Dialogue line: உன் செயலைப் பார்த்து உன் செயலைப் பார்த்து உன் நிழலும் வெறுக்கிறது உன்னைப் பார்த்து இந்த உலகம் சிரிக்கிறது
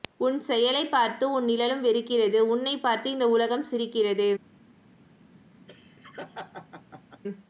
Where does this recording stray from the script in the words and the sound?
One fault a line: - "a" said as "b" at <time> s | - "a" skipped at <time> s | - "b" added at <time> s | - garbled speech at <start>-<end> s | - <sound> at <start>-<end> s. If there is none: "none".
- "செயலைப் பார்த்து உன்" skipped at 1.4 s
- laugh at 5.7-7.2 s